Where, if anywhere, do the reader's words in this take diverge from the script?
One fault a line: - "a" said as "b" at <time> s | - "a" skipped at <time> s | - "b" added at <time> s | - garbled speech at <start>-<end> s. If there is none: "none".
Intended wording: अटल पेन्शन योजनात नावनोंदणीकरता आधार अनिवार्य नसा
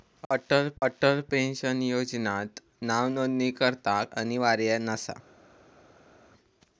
- "अटल" added at 0.8 s
- "आधार" skipped at 4.0 s